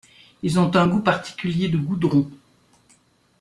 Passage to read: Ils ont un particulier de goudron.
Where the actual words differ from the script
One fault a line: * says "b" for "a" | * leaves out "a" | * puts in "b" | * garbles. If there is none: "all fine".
* puts in "goût"